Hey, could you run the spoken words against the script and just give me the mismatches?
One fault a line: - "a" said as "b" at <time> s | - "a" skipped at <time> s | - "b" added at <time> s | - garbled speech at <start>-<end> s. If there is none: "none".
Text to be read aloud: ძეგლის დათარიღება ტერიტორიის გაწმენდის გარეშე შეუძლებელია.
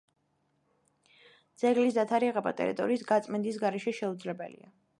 none